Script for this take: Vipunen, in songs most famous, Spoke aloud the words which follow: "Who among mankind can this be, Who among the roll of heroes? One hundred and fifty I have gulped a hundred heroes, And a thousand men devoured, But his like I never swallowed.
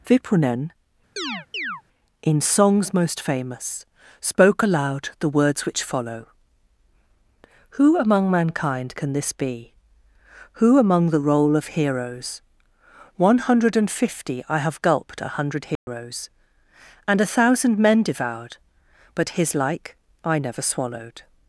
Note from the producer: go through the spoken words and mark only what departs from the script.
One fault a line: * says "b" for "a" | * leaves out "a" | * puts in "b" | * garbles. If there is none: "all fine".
all fine